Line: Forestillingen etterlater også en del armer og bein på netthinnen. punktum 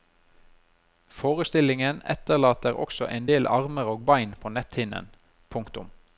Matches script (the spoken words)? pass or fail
pass